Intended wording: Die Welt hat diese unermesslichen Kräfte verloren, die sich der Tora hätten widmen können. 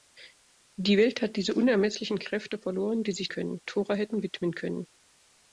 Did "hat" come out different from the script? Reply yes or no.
no